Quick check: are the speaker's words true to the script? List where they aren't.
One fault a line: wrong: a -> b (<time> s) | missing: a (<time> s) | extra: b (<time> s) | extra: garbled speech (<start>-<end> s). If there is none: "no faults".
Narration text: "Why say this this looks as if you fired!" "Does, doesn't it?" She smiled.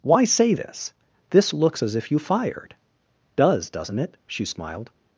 no faults